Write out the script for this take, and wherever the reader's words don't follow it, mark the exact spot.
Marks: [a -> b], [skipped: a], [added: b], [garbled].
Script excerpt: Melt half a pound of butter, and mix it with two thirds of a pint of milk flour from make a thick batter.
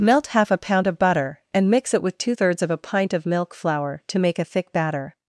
Melt half a pound of butter, and mix it with two thirds of a pint of milk flour [from -> to] make a thick batter.